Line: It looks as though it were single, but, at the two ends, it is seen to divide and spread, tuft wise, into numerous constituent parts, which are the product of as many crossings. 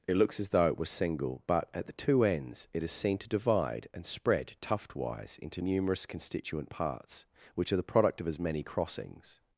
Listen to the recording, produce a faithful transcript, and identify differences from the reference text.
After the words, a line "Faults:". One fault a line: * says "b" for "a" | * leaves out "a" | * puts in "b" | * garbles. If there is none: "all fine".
It looks as though it was single, but, at the two ends, it is seen to divide and spread, tuft wise, into numerous constituent parts, which are the product of as many crossings.
Faults:
* says "was" for "were"